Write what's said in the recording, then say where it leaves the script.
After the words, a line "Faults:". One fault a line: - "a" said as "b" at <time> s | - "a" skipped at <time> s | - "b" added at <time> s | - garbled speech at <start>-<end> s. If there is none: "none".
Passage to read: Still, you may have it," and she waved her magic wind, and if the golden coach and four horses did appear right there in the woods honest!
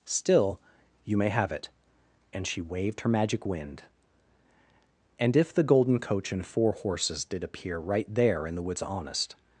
Still, you may have it," and she waved her magic wind, and if the golden coach and four horses did appear right there in the woods honest!
Faults:
none